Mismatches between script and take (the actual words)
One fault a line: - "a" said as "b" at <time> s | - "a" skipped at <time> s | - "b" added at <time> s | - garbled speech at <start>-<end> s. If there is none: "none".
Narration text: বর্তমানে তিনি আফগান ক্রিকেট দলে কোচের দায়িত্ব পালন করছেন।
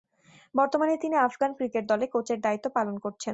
none